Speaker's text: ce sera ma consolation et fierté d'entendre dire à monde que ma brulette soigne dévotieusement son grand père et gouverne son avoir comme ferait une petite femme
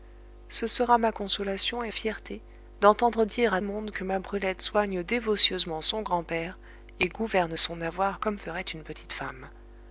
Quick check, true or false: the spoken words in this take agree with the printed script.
true